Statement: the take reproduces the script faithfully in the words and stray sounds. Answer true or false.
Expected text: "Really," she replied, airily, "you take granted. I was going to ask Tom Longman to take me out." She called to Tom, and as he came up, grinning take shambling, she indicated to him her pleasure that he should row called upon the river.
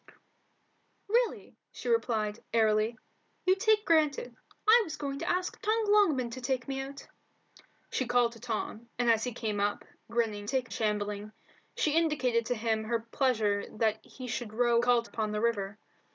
true